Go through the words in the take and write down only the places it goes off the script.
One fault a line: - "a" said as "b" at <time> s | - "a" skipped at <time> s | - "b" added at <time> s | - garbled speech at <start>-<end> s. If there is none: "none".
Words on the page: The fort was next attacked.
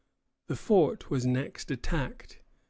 none